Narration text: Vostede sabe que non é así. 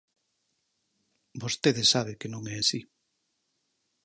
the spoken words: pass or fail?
pass